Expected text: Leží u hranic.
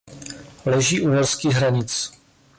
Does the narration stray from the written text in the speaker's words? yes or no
yes